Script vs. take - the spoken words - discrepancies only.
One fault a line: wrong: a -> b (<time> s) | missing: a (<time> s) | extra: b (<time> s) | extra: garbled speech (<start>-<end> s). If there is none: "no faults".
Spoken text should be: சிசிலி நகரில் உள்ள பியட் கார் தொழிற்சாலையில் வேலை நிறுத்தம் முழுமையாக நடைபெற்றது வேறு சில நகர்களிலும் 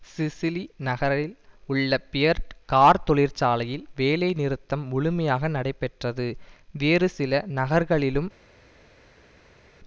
no faults